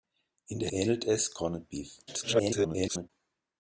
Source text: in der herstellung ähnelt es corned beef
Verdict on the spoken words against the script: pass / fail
fail